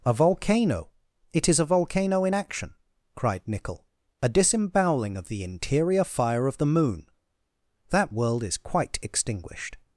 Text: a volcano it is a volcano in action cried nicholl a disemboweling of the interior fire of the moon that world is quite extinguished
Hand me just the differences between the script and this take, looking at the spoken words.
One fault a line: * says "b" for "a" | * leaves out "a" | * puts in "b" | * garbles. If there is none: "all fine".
all fine